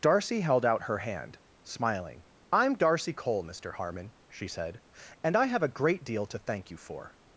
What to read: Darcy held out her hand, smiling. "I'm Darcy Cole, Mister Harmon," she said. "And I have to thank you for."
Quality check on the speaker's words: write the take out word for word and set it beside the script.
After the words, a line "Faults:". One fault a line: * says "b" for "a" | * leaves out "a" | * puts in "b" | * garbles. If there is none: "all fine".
Darcy held out her hand, smiling. "I'm Darcy Cole, Mister Harmon," she said. "And I have a great deal to thank you for."
Faults:
* puts in "a great deal"